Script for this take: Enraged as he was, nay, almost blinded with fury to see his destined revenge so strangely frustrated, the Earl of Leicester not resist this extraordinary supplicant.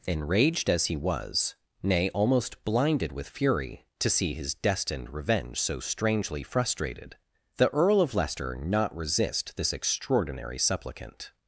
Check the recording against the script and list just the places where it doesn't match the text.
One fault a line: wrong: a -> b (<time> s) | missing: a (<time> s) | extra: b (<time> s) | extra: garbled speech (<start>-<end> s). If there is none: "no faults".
no faults